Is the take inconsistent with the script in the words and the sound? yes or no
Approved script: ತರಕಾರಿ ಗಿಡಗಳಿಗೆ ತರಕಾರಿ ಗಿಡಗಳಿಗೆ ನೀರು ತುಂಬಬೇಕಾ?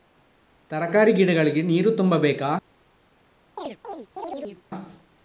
yes